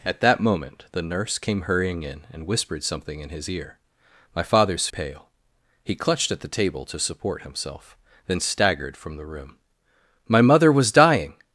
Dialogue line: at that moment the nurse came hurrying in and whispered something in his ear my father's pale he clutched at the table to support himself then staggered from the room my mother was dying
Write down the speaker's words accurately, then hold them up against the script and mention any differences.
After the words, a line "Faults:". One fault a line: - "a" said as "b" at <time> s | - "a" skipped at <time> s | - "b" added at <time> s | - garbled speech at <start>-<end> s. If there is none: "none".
at that moment the nurse came hurrying in and whispered something in his ear my father's pale he clutched at the table to support himself then staggered from the room my mother was dying
Faults:
none